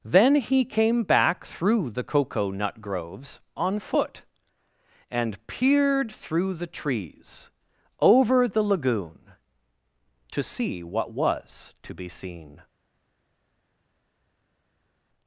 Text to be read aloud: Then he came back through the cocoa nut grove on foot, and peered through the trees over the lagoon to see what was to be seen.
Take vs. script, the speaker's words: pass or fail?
fail